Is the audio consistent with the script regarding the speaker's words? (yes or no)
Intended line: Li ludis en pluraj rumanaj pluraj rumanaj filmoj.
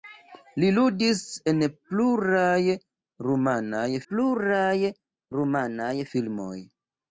yes